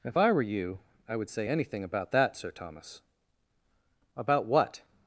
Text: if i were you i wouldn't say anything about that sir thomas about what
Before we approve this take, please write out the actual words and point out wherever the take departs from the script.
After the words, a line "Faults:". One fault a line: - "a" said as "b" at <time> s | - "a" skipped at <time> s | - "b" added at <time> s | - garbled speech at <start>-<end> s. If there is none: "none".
if i were you i would say anything about that sir thomas about what
Faults:
- "wouldn't" said as "would" at 1.2 s